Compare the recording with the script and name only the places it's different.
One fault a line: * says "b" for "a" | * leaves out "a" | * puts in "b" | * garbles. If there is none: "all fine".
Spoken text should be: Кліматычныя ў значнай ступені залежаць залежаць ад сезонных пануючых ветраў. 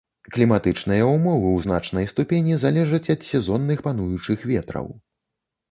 * puts in "ўмовы"
* leaves out "залежаць"